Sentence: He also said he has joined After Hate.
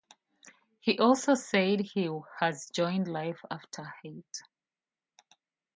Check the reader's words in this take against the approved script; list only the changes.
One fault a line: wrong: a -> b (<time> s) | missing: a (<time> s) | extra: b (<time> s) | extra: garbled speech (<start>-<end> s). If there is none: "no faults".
extra: Life (3.1 s)